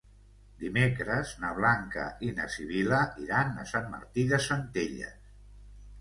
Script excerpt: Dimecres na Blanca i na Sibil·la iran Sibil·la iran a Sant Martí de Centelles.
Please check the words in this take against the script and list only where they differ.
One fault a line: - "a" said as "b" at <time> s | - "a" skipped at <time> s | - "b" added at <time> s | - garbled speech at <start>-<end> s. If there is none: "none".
- "Sibil·la iran" skipped at 3.5 s